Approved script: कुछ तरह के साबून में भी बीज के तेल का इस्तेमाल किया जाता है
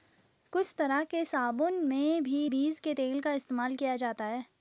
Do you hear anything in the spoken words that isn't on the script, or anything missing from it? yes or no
no